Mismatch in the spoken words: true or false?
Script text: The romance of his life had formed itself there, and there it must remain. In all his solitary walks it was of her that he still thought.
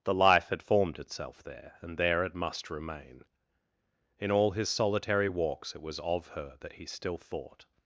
true